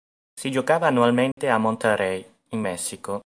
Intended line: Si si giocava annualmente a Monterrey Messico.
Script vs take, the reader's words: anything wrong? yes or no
yes